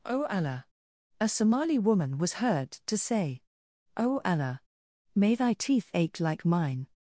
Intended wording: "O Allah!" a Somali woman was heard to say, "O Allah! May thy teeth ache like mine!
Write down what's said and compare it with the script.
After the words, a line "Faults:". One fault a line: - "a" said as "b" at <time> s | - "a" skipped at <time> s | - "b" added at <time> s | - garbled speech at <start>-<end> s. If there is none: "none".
"O Allah!" a Somali woman was heard to say, "O Allah! May thy teeth ache like mine!
Faults:
none